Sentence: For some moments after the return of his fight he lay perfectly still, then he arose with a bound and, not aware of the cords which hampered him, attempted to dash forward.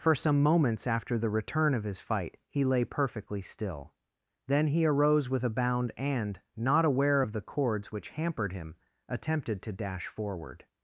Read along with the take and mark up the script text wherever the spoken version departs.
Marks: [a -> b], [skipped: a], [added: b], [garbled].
For some moments after the return of his fight he lay perfectly still, then he arose with a bound and, not aware of the cords which hampered him, attempted to dash forward.